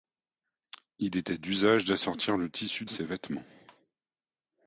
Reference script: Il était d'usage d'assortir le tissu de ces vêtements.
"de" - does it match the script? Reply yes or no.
no